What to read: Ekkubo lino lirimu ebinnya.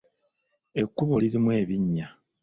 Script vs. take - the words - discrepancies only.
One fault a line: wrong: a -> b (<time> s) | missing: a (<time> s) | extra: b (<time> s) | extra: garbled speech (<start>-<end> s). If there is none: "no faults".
missing: lino (1.1 s)